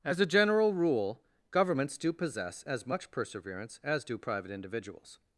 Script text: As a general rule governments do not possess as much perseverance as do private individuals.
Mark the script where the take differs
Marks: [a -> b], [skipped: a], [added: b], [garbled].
As a general rule governments do [skipped: not] possess as much perseverance as do private individuals.